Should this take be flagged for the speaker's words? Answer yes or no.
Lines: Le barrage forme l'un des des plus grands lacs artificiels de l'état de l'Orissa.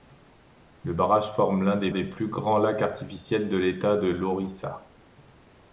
no